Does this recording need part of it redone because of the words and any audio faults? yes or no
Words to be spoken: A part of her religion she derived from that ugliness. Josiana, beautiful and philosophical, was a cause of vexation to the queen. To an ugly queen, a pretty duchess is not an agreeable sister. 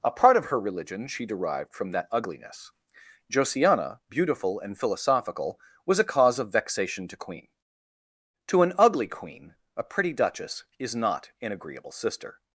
yes